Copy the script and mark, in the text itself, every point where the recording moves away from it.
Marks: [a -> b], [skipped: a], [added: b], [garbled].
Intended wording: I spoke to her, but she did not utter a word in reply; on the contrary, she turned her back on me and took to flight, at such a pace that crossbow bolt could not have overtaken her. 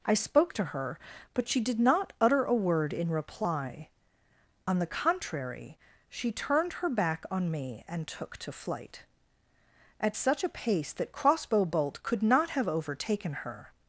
I spoke to her, but she did not utter a word in reply; on the contrary, she turned her back on me and took to flight, at such a pace that crossbow bolt could not have overtaken her.